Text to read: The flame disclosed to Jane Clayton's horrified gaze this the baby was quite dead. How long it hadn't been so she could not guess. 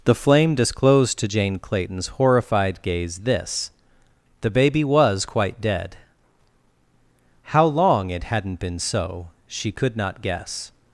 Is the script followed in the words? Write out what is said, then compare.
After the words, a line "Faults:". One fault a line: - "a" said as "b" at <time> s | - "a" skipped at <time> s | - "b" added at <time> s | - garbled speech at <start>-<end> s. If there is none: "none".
The flame disclosed to Jane Clayton's horrified gaze this the baby was quite dead. How long it hadn't been so she could not guess.
Faults:
none